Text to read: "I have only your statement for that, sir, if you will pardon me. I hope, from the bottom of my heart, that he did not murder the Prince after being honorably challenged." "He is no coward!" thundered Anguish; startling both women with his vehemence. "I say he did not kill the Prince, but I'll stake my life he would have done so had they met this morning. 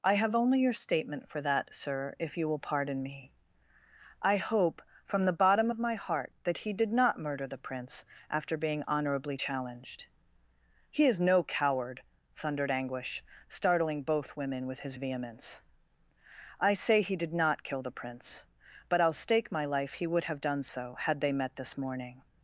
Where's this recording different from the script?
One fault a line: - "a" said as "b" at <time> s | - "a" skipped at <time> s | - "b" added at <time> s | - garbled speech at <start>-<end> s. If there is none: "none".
none